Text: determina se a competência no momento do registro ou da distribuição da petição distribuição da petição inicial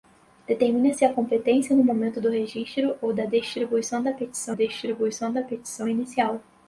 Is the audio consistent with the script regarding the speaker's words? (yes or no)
yes